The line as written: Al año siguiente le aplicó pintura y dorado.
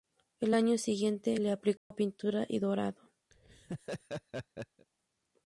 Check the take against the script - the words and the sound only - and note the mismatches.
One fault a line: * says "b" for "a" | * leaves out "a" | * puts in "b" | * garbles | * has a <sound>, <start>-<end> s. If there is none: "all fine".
* has a dropout, 1.8-1.9 s
* has a laugh, 3.3-4.9 s